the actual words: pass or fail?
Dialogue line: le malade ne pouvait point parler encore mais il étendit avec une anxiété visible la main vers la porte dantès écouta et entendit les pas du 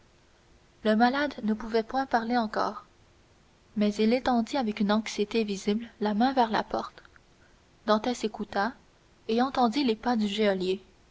pass